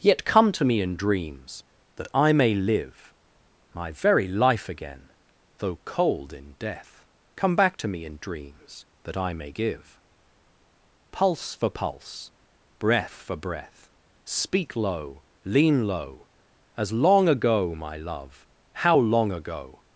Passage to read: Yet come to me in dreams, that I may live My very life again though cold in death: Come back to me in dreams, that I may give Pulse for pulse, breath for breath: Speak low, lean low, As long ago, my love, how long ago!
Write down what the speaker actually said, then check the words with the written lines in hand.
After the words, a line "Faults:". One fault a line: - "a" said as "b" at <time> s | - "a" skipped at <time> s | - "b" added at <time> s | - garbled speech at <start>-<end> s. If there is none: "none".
Yet come to me in dreams, that I may live My very life again though cold in death: Come back to me in dreams, that I may give Pulse for pulse, breath for breath: Speak low, lean low, As long ago, my love, how long ago!
Faults:
none